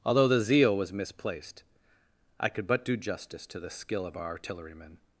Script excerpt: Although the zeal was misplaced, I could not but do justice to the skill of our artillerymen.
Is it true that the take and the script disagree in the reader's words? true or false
true